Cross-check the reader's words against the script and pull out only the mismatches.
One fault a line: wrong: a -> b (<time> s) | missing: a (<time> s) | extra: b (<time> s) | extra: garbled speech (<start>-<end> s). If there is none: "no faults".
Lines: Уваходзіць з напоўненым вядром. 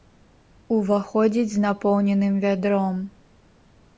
no faults